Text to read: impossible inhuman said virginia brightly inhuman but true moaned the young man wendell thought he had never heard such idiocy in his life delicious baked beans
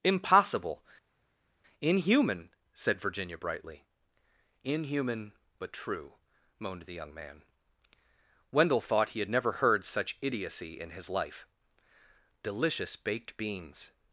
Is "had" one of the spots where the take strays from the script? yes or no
no